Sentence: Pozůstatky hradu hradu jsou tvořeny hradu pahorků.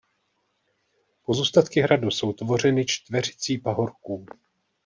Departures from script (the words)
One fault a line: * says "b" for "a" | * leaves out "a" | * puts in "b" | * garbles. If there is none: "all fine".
* leaves out "hradu"
* says "čtveřicí" for "hradu"